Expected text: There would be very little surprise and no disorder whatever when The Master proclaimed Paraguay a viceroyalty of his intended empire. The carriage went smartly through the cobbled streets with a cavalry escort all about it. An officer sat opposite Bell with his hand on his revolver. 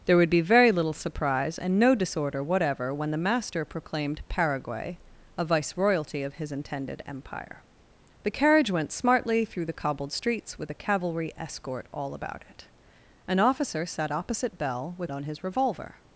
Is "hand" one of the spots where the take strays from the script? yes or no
yes